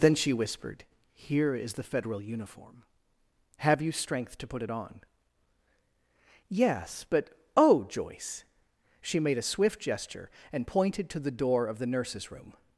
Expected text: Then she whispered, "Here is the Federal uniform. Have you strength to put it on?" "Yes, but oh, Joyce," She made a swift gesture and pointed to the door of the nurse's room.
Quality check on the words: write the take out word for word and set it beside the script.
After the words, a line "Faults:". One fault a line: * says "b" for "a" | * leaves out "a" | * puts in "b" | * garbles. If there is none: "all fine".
Then she whispered, "Here is the Federal uniform. Have you strength to put it on?" "Yes, but oh, Joyce," She made a swift gesture and pointed to the door of the nurse's room.
Faults:
all fine